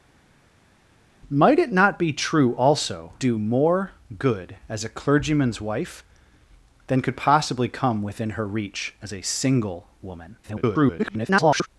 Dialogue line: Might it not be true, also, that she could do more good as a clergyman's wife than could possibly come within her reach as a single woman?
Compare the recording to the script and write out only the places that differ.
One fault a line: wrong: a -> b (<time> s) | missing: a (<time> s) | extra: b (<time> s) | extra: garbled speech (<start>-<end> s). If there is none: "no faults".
missing: that she could (3.1 s)
extra: garbled speech (10.4-11.7 s)